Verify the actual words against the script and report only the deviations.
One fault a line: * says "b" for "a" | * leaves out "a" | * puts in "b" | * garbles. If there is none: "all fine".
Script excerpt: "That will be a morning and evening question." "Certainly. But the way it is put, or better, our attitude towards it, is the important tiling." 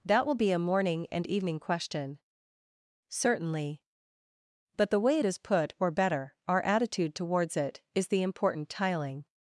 all fine